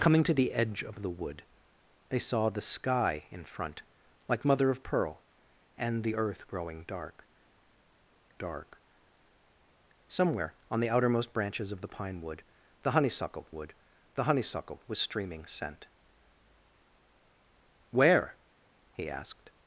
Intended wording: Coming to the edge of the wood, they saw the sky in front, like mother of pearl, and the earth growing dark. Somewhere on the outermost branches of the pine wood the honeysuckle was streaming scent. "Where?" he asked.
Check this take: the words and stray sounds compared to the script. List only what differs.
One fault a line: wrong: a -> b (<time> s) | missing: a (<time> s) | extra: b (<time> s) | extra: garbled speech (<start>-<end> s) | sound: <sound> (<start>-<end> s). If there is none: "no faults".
extra: dark (8.4 s)
extra: wood the honeysuckle (13.5 s)